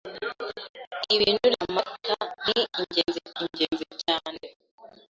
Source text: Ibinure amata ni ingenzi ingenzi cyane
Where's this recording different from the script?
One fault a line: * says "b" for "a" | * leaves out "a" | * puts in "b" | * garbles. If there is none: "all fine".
all fine